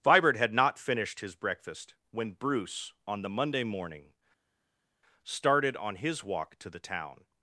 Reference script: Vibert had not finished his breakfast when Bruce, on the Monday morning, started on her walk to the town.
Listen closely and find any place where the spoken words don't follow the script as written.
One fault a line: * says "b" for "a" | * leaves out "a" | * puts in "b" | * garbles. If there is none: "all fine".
* says "his" for "her"